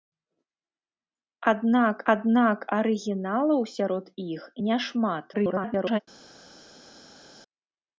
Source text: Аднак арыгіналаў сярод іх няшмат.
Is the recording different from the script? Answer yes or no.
yes